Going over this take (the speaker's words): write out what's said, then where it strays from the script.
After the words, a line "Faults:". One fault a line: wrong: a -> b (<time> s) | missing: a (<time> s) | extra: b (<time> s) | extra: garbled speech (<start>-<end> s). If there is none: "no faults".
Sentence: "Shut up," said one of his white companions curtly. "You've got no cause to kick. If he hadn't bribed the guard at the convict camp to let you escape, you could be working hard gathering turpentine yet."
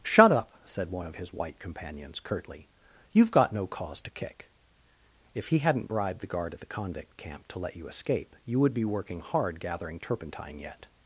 "Shut up," said one of his white companions curtly. "You've got no cause to kick. If he hadn't bribed the guard at the convict camp to let you escape, you would be working hard gathering turpentine yet."
Faults:
wrong: could -> would (8.6 s)